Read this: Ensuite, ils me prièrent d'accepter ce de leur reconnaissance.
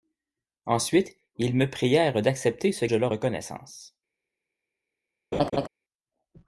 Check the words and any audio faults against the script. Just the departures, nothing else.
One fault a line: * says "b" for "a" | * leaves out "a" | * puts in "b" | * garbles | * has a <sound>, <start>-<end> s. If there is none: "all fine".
* has a laugh, 5.3-5.7 s